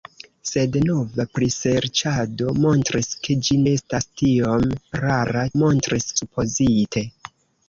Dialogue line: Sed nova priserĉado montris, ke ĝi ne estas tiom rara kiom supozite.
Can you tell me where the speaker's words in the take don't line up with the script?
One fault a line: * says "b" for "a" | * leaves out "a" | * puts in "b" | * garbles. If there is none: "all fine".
* leaves out "ne"
* says "montris" for "kiom"